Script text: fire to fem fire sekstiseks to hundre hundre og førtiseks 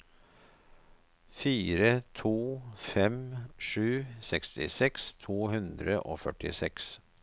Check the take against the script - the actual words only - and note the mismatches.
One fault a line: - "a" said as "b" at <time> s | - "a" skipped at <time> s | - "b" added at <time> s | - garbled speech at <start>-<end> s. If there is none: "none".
- "fire" said as "sju" at 3.7 s
- "hundre" skipped at 6.0 s